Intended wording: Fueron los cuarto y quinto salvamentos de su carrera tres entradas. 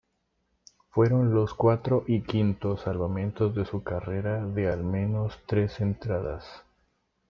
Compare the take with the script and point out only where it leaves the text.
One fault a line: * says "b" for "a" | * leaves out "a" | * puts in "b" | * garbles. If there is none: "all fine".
* puts in "de al menos"